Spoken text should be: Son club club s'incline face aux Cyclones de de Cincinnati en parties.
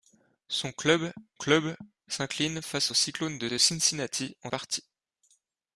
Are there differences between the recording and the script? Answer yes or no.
no